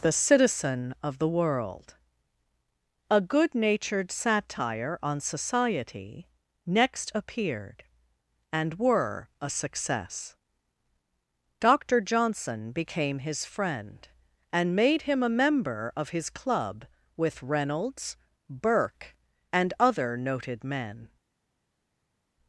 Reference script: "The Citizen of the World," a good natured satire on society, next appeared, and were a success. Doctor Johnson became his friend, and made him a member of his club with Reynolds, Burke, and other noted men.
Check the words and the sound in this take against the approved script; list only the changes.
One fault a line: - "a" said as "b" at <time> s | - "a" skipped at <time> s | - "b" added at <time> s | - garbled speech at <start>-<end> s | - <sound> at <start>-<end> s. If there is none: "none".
none